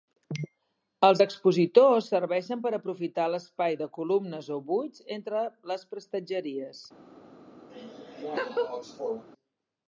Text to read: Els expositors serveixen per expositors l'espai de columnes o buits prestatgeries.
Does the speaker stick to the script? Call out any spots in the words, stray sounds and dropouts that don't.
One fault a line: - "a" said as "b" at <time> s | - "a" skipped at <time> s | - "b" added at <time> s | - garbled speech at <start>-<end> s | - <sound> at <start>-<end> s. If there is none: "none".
- "expositors" said as "aprofitar" at 2.8 s
- "entre les" added at 5.2 s
- laugh at 7.7-9.2 s